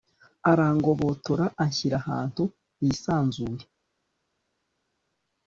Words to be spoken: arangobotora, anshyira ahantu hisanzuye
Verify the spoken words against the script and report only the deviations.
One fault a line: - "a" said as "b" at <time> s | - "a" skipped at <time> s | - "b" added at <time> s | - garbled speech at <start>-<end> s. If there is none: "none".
none